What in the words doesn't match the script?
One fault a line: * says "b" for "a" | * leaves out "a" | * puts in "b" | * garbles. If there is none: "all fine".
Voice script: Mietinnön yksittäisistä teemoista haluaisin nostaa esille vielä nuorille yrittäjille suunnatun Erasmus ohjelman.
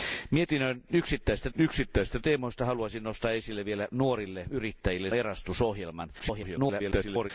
* puts in "yksittäisistä"
* leaves out "suunnatun"
* garbles